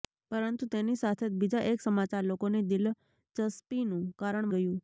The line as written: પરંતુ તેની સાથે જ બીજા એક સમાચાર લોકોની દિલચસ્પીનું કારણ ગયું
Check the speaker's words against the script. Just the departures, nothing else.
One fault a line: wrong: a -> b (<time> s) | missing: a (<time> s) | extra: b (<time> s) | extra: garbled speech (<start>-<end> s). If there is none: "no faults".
no faults